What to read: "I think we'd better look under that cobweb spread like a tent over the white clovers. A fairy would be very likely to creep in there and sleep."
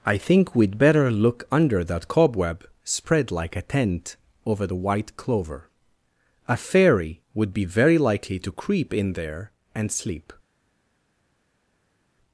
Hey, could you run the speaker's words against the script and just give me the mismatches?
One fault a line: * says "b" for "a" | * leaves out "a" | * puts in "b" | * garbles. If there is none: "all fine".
* says "clover" for "clovers"